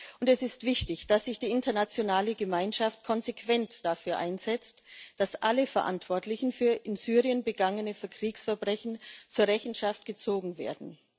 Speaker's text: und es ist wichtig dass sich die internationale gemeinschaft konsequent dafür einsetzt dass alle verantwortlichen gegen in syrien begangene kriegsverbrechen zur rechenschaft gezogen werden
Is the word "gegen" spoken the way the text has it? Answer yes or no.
no